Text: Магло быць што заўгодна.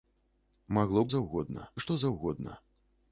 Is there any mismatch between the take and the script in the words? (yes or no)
yes